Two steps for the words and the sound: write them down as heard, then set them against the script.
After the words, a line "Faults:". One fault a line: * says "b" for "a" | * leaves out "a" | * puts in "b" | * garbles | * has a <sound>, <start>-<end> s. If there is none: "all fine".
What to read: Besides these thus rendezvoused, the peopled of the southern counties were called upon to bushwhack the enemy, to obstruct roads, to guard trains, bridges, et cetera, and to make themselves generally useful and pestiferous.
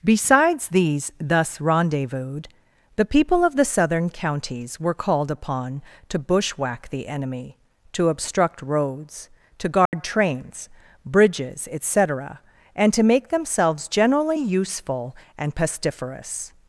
Besides these thus rendezvoused, the people of the southern counties were called upon to bushwhack the enemy, to obstruct roads, to guard trains, bridges, et cetera, and to make themselves generally useful and pestiferous.
Faults:
* says "people" for "peopled"
* has a dropout, 9.9-9.9 s